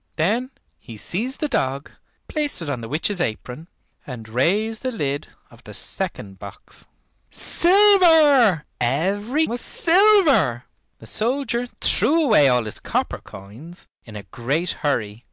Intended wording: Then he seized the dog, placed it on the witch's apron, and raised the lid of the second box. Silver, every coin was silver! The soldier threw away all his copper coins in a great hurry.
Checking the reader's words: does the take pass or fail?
fail